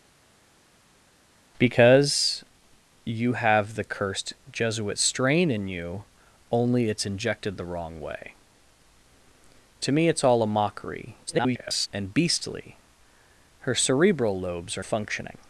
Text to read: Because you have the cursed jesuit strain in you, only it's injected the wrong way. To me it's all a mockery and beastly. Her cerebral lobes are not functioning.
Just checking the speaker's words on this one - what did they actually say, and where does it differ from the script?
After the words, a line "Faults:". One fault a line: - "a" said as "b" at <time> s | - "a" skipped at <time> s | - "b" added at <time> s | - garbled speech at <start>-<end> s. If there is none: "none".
Because you have the cursed jesuit strain in you, only it's injected the wrong way. To me it's all a mockery [garbled] and beastly. Her cerebral lobes are functioning.
Faults:
- garbled speech at 11.3-11.9 s
- "not" skipped at 14.8 s